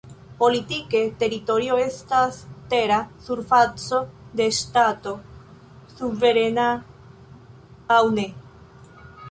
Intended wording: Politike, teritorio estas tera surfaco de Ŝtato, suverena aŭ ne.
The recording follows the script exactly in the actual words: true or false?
true